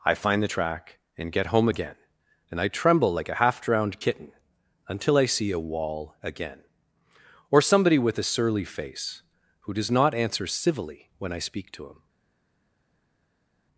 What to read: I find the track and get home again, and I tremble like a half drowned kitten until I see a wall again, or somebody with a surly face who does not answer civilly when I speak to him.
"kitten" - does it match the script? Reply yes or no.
yes